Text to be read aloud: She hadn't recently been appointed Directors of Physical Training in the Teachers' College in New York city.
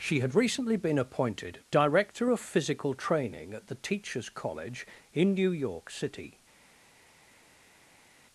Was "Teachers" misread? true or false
false